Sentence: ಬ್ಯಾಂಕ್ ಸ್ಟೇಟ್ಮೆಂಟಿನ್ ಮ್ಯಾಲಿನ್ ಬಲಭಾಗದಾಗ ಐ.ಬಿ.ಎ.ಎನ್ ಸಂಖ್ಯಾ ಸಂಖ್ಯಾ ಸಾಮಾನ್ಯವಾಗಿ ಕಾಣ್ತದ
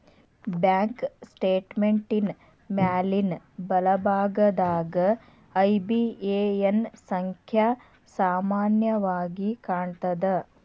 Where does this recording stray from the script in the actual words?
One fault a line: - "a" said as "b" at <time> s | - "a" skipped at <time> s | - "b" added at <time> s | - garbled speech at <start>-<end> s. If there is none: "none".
- "ಸಂಖ್ಯಾ" skipped at 7.7 s